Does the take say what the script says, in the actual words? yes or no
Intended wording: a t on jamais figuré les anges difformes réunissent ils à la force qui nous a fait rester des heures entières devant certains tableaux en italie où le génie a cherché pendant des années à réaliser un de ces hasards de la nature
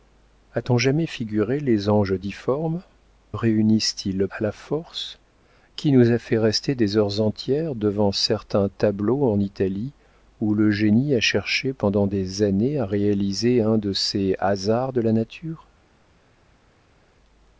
yes